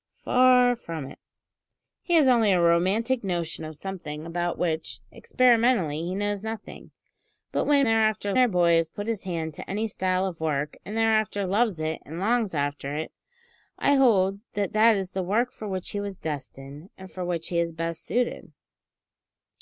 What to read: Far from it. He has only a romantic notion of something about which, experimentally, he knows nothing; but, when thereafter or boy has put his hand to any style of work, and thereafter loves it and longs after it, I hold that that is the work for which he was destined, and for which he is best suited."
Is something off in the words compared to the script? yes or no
no